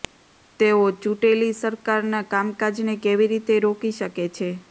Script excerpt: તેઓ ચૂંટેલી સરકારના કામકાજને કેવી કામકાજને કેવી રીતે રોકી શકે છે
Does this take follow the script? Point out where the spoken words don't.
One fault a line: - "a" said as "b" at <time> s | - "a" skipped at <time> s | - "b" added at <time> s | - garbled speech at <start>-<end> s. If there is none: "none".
- "કામકાજને કેવી" skipped at 3.3 s